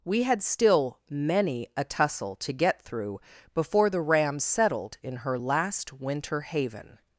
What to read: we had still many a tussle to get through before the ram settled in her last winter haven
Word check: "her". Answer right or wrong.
right